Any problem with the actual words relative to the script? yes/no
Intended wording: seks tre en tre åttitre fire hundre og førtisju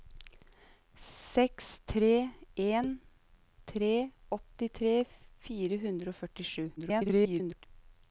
yes